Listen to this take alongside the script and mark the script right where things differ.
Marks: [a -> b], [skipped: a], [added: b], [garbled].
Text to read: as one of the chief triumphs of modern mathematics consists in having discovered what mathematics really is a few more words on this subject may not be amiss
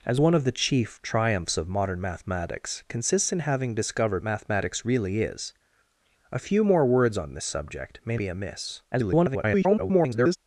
as one of the chief triumphs of modern mathematics consists in having discovered [skipped: what] mathematics really is a few more words on this subject may [skipped: not] be amiss [garbled]